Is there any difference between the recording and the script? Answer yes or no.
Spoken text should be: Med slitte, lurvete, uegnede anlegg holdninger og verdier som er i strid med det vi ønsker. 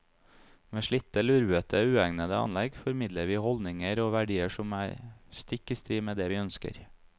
yes